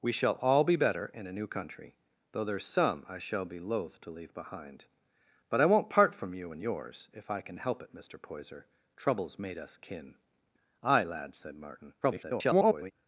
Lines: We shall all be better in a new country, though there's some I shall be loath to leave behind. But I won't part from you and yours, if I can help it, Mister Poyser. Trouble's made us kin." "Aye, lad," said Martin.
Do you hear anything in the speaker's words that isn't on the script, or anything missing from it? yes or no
yes